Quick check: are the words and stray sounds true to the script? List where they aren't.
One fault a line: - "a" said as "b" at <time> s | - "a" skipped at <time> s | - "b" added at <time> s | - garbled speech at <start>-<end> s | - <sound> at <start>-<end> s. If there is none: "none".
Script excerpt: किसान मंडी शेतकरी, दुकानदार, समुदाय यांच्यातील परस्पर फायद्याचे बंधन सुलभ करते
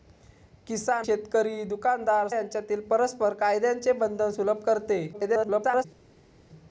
- "मंडी" skipped at 1.1 s
- "समुदाय" skipped at 2.3 s
- garbled speech at 5.1-5.9 s